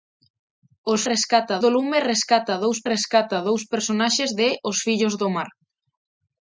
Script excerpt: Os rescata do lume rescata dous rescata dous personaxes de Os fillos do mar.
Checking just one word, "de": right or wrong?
right